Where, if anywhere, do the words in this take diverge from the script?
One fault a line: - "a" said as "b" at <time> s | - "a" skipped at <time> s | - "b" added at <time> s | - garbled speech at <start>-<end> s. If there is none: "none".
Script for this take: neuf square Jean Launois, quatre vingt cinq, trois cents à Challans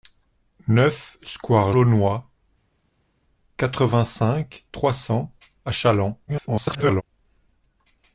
- "Jean" skipped at 1.7 s
- garbled speech at 6.3-7.0 s